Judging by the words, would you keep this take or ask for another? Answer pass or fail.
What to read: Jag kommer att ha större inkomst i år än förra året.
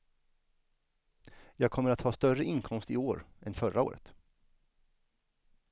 pass